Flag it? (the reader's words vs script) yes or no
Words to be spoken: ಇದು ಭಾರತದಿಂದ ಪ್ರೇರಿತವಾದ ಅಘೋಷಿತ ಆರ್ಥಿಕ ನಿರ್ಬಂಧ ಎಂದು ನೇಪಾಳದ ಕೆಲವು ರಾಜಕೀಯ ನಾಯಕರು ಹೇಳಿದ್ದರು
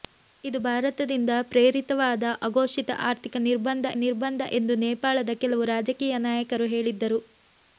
yes